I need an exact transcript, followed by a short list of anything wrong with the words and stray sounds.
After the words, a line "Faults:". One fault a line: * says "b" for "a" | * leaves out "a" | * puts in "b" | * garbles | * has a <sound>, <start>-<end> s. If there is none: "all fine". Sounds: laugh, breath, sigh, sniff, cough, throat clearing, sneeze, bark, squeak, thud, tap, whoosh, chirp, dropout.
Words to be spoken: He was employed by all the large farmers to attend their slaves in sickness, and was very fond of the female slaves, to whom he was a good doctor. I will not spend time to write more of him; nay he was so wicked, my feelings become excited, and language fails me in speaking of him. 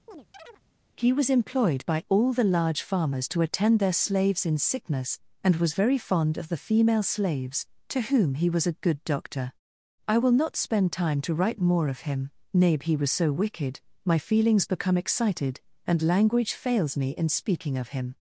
He was employed by all the large farmers to attend their slaves in sickness, and was very fond of the female slaves, to whom he was a good doctor. I will not spend time to write more of him; nay he was so wicked, my feelings become excited, and language fails me in speaking of him.
Faults:
* has a chirp, 0.1-0.6 s